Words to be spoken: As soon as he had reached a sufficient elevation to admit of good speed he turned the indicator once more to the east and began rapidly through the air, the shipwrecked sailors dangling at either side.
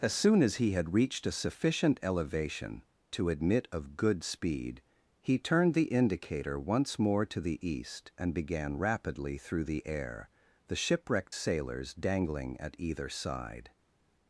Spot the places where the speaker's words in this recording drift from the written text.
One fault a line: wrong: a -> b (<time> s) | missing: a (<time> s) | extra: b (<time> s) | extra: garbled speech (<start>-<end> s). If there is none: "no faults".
no faults